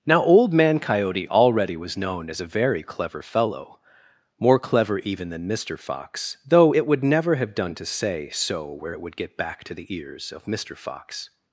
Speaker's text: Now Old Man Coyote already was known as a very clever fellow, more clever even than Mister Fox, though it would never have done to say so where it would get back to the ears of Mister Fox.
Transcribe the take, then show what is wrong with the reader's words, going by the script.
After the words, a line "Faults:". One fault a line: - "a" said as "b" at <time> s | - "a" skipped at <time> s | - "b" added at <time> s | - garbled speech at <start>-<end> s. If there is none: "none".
Now Old Man Coyote already was known as a very clever fellow, more clever even than Mister Fox, though it would never have done to say so where it would get back to the ears of Mister Fox.
Faults:
none